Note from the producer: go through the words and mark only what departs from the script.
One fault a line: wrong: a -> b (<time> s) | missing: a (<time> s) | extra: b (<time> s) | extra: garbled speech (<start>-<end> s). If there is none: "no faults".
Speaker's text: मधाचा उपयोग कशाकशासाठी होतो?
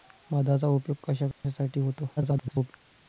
extra: garbled speech (2.2-2.7 s)